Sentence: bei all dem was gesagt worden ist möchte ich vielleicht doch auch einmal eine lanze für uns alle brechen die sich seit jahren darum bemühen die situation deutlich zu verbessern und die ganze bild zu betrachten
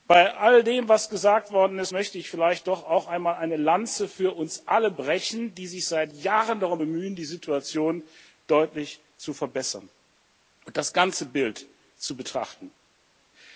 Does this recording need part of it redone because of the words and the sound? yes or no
yes